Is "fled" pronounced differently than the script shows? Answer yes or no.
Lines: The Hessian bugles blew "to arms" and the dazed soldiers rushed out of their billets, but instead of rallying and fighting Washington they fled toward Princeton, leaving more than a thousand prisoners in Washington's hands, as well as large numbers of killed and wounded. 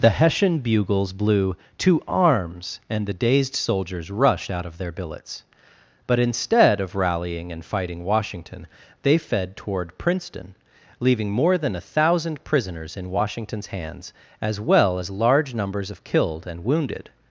yes